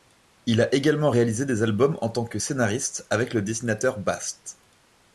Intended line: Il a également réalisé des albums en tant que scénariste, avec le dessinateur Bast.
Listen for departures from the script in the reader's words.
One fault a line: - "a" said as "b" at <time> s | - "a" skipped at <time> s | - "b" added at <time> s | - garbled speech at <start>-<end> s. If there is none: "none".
none